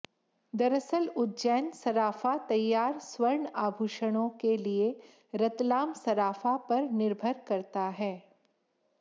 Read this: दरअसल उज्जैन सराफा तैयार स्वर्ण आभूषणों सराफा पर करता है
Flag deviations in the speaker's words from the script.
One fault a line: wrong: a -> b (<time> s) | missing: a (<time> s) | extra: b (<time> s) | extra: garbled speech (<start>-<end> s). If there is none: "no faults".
extra: के लिए रतलाम (4.4 s)
extra: निर्भर (6.9 s)